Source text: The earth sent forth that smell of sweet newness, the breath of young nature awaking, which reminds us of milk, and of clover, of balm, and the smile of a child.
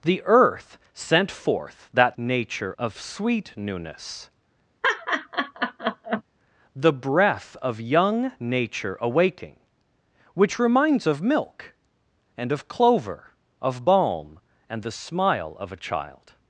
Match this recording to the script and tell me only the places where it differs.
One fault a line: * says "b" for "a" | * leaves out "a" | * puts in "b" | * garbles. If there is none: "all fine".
* says "nature" for "smell"
* leaves out "us"